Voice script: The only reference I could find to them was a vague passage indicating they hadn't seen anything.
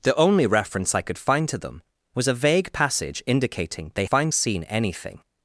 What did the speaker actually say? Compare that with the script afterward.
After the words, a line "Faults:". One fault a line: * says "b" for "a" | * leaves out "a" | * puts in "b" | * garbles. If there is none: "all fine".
The only reference I could find to them was a vague passage indicating they find seen anything.
Faults:
* says "find" for "hadn't"